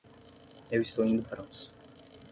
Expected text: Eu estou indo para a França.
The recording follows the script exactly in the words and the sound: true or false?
false